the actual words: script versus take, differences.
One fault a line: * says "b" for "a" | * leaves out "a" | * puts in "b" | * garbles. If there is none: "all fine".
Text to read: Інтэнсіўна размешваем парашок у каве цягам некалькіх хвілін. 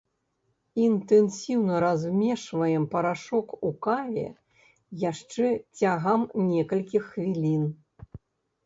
* puts in "яшчэ"